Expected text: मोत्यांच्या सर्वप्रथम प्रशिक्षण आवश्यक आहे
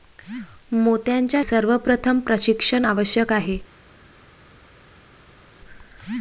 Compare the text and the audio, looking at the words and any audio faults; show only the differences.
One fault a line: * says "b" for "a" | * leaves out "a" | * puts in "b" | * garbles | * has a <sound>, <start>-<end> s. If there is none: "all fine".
all fine